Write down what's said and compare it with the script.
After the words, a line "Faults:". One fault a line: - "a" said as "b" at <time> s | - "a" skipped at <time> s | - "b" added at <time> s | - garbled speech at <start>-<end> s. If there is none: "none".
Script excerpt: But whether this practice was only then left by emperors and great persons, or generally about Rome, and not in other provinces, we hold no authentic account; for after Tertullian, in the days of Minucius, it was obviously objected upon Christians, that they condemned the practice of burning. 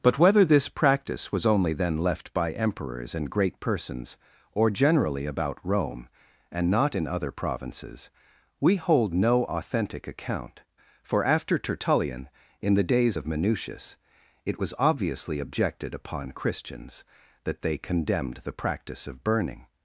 But whether this practice was only then left by emperors and great persons, or generally about Rome, and not in other provinces, we hold no authentic account; for after Tertullian, in the days of Minucius, it was obviously objected upon Christians, that they condemned the practice of burning.
Faults:
none